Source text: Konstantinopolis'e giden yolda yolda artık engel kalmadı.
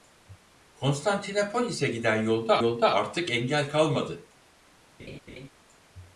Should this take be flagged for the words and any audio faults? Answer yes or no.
yes